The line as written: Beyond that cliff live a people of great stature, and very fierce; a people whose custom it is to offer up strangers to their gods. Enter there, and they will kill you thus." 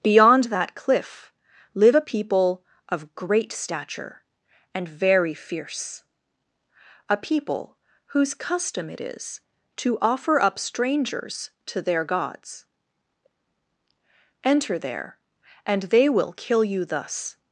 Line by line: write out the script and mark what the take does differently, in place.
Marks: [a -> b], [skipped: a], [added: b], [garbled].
Beyond that cliff live a people of great stature, and very fierce; a people whose custom it is to offer up strangers to their gods. Enter there, and they will kill you thus."